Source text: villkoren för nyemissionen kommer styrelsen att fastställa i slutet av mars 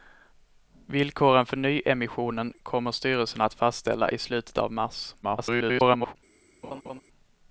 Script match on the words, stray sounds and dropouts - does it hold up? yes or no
no